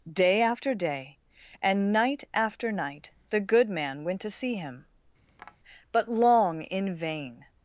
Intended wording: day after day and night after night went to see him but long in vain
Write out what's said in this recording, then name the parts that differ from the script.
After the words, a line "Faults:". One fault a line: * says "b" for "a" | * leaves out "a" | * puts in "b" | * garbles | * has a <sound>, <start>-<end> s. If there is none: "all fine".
day after day and night after night the good man went to see him but long in vain
Faults:
* puts in "the good man"
* has a tap, 5.3-5.6 s